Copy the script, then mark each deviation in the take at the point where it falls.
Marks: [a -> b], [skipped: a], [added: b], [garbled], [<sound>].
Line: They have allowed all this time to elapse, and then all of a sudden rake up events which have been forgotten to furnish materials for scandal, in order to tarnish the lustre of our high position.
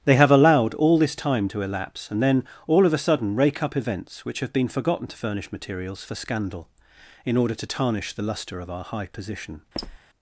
They have allowed all this time to elapse, and then all of a sudden rake up events which have been forgotten to furnish materials for scandal, in order to tarnish the lustre of our high position. [squeak]